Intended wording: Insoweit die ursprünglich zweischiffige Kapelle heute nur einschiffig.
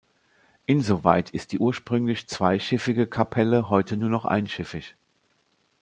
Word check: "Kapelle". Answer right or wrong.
right